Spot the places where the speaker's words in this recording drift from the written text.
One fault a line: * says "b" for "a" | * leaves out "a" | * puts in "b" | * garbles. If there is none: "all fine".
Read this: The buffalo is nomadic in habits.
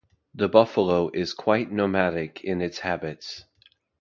* puts in "quite"
* puts in "its"